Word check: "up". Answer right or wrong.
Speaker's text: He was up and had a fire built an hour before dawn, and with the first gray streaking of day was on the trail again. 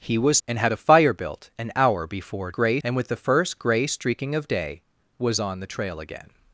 wrong